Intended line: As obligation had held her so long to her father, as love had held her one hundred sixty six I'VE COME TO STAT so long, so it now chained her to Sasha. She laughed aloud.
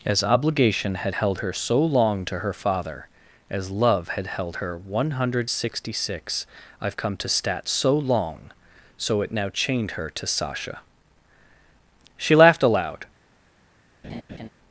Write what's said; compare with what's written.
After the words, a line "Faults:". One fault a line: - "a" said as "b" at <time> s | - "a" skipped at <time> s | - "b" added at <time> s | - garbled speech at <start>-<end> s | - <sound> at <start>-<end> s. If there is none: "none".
As obligation had held her so long to her father, as love had held her one hundred sixty six I'VE COME TO STAT so long, so it now chained her to Sasha. She laughed aloud.
Faults:
- laugh at 14.0-14.5 s